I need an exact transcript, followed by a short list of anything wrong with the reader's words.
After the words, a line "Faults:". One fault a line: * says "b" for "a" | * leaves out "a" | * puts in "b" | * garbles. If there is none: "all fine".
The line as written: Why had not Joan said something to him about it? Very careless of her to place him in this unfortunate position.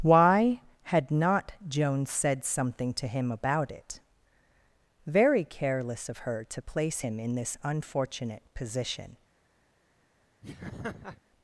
Why had not Joan said something to him about it? Very careless of her to place him in this unfortunate position.
Faults:
all fine